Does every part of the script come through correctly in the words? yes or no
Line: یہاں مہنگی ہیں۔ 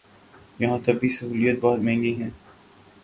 no